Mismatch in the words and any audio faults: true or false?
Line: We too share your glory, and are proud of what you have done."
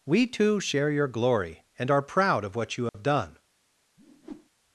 true